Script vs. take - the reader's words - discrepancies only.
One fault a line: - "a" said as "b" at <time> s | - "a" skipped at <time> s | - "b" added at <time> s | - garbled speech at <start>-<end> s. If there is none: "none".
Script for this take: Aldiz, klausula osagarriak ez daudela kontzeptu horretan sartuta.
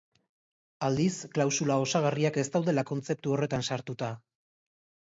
none